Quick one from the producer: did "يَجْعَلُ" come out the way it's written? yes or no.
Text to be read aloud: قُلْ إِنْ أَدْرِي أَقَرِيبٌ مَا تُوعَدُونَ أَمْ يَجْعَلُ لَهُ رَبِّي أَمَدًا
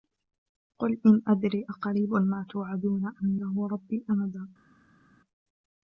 no